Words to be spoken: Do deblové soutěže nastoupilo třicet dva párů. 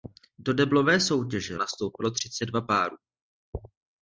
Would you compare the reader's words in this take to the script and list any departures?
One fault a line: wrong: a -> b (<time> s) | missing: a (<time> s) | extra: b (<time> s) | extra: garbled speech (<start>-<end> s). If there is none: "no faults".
no faults